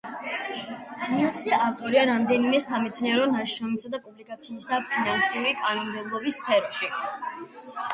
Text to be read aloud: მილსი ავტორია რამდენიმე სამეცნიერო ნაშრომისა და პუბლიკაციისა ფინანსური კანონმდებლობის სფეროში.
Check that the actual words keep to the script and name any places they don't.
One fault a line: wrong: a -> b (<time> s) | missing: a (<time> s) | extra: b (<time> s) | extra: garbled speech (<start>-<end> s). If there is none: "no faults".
no faults